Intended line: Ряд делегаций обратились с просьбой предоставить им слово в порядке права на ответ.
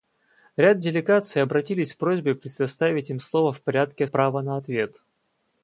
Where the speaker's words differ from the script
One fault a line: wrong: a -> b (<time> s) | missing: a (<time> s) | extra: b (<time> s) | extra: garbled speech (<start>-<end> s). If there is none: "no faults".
no faults